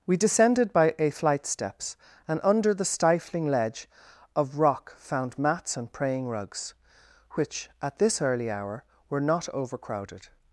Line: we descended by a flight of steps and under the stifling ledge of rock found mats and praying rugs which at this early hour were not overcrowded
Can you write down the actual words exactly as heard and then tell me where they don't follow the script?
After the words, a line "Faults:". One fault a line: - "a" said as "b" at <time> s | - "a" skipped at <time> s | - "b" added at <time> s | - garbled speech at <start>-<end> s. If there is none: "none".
we descended by a flight steps and under the stifling ledge of rock found mats and praying rugs which at this early hour were not overcrowded
Faults:
- "of" skipped at 1.4 s